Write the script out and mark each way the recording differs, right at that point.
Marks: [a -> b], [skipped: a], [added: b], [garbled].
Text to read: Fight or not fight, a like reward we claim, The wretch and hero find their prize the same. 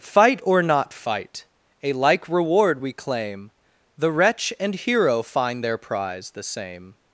Fight or not fight, a like reward we claim, The wretch and hero find their prize the same.